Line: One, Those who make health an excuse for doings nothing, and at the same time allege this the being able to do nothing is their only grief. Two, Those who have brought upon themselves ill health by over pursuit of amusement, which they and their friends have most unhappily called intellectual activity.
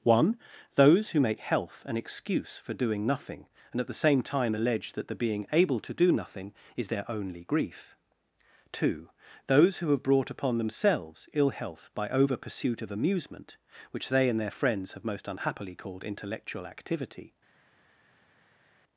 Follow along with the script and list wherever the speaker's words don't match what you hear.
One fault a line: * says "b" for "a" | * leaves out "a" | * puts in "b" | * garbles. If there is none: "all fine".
* says "doing" for "doings"
* says "that" for "this"